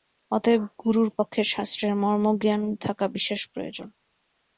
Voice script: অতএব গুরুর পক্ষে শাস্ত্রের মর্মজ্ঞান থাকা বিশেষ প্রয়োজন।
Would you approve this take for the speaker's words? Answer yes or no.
yes